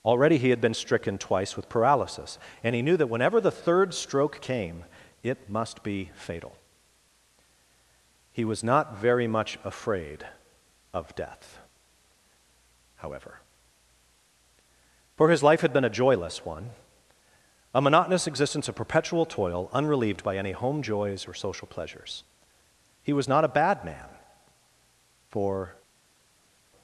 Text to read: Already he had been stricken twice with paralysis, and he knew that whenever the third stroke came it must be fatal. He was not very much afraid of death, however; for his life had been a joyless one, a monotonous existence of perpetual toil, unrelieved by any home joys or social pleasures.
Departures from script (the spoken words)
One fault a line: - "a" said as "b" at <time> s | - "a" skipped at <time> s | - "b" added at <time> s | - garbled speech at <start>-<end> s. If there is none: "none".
- "He was not a bad man for" added at 23.0 s